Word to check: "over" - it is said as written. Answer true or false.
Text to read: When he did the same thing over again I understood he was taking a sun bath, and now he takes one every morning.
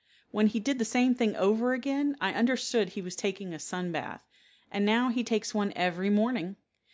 true